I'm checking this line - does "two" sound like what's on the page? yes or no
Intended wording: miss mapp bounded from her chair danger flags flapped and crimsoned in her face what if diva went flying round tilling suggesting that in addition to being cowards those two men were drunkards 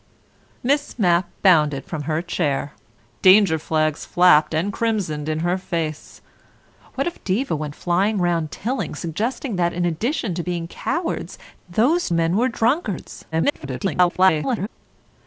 no